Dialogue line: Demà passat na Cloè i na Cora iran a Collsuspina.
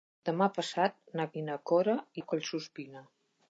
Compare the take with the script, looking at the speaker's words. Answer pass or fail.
fail